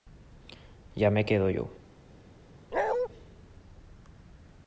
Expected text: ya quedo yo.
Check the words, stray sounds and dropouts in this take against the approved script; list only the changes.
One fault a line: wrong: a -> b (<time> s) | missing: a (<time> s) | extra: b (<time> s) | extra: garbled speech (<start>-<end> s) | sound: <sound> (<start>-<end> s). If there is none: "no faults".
extra: me (1.1 s)
sound: bark (2.7-3.1 s)